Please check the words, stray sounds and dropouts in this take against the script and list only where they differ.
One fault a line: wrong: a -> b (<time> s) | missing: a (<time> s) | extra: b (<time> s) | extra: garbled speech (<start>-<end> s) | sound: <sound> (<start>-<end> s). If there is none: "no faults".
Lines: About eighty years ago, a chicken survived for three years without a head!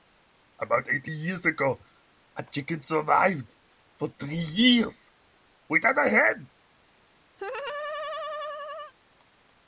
sound: laugh (7.4-8.9 s)